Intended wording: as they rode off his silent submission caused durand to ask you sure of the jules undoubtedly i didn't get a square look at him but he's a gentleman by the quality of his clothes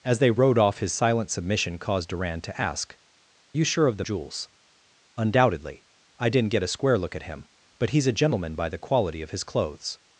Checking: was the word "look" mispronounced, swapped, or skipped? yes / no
no